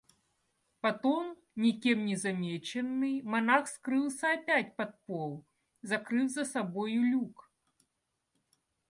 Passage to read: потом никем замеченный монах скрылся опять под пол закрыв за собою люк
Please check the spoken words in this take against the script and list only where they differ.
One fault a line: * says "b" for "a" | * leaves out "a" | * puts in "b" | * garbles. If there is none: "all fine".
* puts in "не"